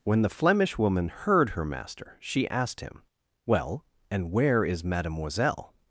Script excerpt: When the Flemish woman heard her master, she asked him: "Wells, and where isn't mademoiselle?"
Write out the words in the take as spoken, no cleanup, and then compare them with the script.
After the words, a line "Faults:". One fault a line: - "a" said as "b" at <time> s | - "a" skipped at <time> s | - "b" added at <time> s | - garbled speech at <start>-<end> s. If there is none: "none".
When the Flemish woman heard her master, she asked him: "Well, and where is mademoiselle?"
Faults:
- "Wells" said as "Well" at 3.5 s
- "isn't" said as "is" at 4.7 s